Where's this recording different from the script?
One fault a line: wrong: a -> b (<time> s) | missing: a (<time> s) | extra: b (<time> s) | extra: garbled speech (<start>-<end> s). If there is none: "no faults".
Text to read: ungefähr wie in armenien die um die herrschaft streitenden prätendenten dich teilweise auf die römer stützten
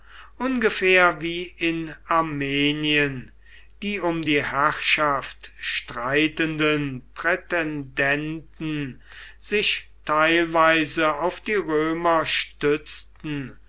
wrong: dich -> sich (9.4 s)